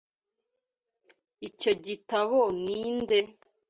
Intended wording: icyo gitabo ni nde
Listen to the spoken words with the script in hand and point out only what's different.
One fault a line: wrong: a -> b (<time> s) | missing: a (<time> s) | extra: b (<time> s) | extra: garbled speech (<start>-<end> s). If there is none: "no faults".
no faults